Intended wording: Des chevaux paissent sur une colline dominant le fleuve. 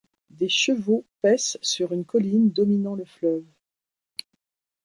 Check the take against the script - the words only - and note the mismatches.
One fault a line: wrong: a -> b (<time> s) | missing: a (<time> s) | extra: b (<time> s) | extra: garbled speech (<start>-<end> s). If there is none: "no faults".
no faults